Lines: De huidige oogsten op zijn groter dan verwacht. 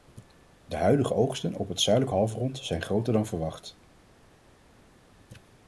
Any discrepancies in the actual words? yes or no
yes